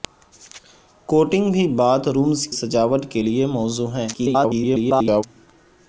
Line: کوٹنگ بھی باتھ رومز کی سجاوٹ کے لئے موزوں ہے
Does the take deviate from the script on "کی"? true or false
true